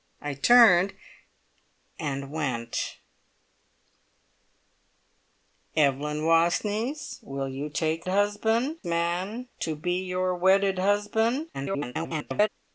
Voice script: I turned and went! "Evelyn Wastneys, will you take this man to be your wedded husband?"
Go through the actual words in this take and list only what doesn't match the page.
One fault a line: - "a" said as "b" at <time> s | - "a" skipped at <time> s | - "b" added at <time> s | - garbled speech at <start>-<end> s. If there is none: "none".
- "this" said as "husband" at 8.1 s
- garbled speech at 11.5-12.5 s